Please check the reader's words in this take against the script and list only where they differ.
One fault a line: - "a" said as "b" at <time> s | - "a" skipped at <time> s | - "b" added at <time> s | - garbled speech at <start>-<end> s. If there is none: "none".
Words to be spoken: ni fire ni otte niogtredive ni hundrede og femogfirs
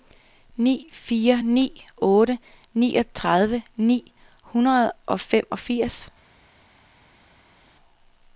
none